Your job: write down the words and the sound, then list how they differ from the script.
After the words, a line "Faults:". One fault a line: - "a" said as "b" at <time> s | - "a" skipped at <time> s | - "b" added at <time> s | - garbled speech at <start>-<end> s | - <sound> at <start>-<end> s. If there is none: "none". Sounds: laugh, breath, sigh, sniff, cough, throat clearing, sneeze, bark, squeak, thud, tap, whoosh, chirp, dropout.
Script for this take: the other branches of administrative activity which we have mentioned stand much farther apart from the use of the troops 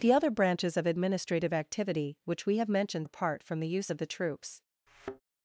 the other branches of administrative activity which we have mentioned apart from the use of the troops
Faults:
- "stand much farther" skipped at 3.1 s
- thud at 4.9-5.2 s